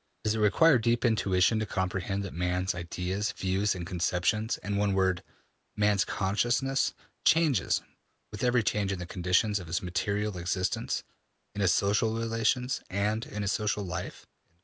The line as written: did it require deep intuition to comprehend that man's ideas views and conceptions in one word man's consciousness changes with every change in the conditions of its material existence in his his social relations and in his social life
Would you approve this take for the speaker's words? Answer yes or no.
no